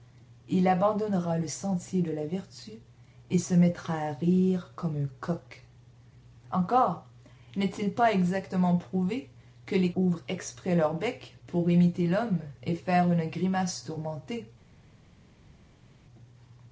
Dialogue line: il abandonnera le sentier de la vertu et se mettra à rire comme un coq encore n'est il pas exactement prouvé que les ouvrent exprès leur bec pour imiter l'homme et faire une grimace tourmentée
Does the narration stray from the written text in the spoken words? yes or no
no